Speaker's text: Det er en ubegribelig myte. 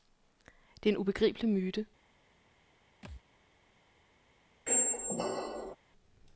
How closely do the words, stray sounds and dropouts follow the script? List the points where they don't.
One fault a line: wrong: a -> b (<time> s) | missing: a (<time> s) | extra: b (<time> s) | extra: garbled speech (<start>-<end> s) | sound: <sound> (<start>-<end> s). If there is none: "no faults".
sound: thud (3.0-3.2 s)
sound: squeak (4.7-5.8 s)